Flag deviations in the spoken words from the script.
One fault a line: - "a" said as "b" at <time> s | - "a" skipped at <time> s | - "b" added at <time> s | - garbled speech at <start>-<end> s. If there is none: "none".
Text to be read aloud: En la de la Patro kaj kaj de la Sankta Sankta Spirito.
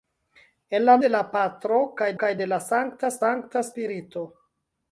none